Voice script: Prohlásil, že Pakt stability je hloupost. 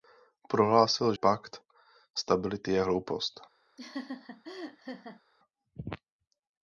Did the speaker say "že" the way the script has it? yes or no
no